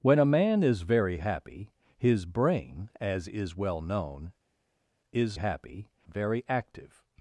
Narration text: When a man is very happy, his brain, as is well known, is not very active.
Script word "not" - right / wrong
wrong